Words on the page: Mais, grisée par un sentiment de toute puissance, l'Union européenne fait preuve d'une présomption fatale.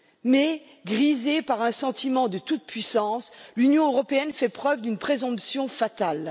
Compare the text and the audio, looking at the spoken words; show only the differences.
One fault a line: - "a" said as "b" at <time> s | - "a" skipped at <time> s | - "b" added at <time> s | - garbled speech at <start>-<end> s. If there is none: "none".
none